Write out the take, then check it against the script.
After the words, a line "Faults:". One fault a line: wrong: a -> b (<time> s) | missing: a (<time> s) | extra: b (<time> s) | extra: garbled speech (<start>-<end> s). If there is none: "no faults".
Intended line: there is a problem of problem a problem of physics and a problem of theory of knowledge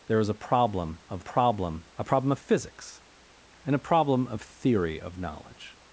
there is a problem of problem a problem of physics and a problem of theory of knowledge
Faults:
no faults